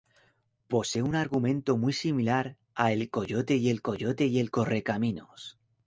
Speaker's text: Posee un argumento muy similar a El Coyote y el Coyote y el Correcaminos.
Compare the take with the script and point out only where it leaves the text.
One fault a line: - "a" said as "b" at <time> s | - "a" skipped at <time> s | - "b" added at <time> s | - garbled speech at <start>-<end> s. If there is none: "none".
none